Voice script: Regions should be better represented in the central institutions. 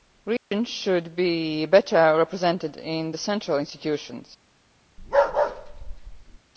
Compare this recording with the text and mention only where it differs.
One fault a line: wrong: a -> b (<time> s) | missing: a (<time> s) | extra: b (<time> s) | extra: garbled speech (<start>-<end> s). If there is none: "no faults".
no faults